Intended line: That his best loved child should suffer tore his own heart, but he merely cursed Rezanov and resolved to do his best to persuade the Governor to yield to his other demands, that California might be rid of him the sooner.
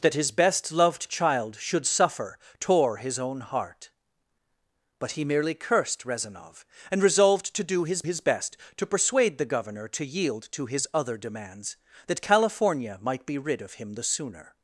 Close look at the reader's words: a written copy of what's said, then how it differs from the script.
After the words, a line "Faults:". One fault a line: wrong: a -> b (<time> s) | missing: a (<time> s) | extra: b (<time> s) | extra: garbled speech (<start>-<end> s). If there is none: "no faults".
That his best loved child should suffer tore his own heart, but he merely cursed Rezanov and resolved to do his his best to persuade the Governor to yield to his other demands, that California might be rid of him the sooner.
Faults:
extra: his (8.0 s)